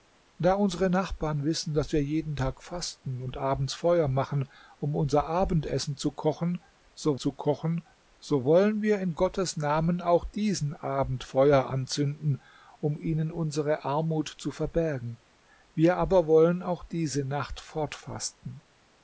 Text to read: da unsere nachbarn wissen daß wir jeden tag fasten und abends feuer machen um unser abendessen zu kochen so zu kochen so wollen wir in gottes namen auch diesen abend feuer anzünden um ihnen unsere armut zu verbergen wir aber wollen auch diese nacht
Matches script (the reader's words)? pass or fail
pass